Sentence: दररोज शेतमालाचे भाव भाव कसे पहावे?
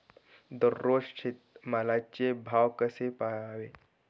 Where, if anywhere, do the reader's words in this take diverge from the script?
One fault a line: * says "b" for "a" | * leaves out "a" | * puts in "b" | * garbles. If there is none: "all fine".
* leaves out "भाव"